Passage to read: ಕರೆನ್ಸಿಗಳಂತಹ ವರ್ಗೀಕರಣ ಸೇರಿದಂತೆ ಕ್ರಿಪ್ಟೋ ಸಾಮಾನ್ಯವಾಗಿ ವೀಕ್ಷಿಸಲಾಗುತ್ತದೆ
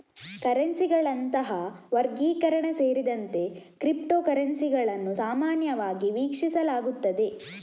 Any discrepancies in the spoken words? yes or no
yes